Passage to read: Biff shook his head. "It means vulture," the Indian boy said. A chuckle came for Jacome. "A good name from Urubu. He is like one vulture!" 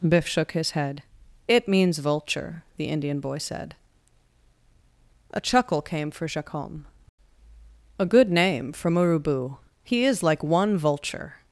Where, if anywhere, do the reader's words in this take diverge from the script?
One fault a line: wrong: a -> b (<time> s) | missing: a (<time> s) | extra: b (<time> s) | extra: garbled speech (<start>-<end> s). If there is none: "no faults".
no faults